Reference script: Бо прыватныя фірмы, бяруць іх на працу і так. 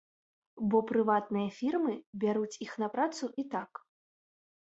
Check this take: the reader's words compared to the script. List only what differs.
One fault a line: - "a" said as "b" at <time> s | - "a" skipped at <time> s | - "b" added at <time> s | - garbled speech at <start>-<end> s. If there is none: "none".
none